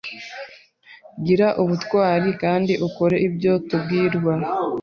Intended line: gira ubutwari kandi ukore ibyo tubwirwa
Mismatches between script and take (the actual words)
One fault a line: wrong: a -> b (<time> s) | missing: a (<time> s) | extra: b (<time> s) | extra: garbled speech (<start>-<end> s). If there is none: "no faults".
no faults